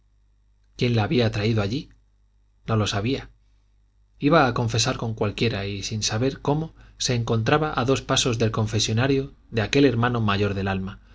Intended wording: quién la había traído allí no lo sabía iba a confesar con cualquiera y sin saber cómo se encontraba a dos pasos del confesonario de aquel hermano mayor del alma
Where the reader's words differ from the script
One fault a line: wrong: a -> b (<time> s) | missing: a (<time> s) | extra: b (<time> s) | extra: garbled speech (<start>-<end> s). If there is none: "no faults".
no faults